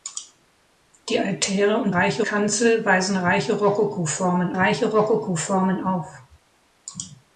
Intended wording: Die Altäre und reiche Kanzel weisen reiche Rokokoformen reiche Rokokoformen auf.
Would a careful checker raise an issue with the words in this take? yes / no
no